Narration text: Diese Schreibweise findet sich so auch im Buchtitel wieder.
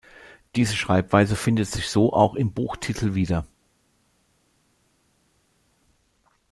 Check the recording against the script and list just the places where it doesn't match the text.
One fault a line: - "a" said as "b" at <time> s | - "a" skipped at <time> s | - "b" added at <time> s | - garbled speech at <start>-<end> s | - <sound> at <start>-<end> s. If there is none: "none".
none